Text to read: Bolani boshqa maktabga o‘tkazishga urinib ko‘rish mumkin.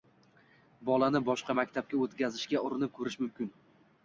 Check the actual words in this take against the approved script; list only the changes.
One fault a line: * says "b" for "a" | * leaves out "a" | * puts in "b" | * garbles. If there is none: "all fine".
all fine